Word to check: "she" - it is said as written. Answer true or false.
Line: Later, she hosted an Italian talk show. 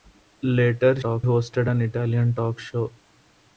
false